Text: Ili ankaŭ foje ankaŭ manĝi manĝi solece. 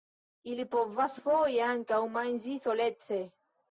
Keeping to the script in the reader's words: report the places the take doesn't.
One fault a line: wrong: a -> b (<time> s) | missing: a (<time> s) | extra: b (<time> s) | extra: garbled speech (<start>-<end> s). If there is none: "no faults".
wrong: ankaŭ -> povas (0.7 s)
missing: manĝi (2.6 s)